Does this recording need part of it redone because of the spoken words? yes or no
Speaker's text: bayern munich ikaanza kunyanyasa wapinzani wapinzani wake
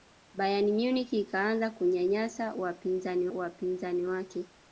no